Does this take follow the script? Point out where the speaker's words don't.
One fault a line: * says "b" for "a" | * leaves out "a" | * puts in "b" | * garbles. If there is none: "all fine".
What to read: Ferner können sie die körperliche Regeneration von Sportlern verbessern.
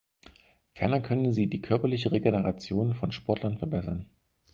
all fine